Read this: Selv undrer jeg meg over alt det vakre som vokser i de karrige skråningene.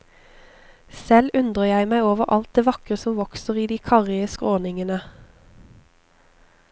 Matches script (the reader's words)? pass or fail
pass